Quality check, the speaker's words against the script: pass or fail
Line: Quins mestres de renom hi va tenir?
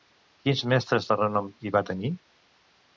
pass